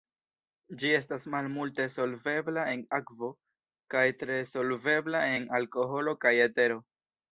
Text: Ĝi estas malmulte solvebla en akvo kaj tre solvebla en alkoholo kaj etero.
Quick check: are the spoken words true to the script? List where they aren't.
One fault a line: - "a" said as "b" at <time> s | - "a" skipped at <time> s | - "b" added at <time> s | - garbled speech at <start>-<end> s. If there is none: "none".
none